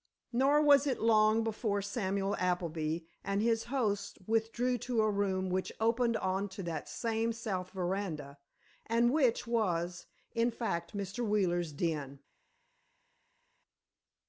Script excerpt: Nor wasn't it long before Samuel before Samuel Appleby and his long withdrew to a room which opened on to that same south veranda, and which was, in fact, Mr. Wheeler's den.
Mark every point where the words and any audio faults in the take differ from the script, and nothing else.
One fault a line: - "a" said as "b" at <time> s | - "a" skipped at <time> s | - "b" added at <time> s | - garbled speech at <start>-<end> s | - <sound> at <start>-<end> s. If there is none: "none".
- "wasn't" said as "was" at 0.6 s
- "before Samuel" skipped at 2.4 s
- "long" said as "host" at 3.6 s